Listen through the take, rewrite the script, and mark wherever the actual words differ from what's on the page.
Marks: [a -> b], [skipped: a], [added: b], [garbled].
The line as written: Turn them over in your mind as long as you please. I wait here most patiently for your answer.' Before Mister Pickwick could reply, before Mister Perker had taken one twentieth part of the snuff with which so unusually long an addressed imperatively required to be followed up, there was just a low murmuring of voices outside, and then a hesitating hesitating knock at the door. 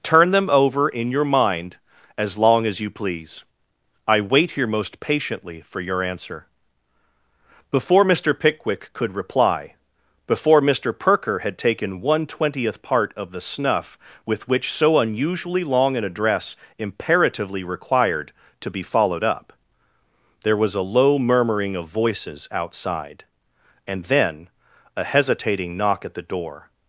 Turn them over in your mind as long as you please. I wait here most patiently for your answer.' Before Mister Pickwick could reply, before Mister Perker had taken one twentieth part of the snuff with which so unusually long an [addressed -> address] imperatively required to be followed up, there was [skipped: just] a low murmuring of voices outside, and then a hesitating [skipped: hesitating] knock at the door.